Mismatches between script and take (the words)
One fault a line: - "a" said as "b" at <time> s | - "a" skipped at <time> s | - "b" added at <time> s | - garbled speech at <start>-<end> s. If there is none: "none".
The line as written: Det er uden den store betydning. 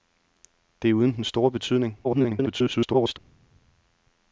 - garbled speech at 2.0-3.2 s